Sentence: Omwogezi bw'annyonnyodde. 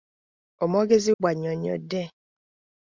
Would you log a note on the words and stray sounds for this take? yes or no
no